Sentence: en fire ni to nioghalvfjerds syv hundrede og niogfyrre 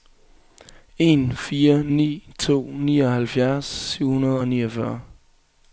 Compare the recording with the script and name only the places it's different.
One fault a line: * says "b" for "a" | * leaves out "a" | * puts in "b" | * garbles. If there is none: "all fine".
all fine